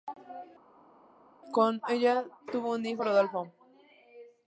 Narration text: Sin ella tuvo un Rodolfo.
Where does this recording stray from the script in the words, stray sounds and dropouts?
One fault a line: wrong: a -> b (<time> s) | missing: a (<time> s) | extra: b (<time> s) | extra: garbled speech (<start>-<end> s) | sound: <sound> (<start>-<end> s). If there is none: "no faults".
wrong: Sin -> Con (1.5 s)
extra: hijo (2.8 s)